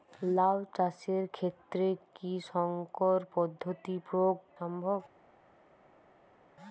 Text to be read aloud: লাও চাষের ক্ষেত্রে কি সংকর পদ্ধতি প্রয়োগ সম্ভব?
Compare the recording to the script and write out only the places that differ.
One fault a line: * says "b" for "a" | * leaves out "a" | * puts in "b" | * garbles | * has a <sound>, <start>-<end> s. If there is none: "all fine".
all fine